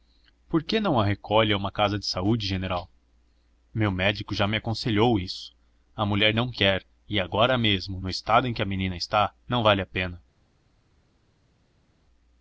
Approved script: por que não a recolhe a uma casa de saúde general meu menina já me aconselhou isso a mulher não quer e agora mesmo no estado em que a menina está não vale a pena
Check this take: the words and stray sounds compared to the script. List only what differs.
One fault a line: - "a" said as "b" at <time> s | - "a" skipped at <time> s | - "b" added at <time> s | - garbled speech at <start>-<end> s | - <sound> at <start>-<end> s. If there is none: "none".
- "menina" said as "médico" at 3.9 s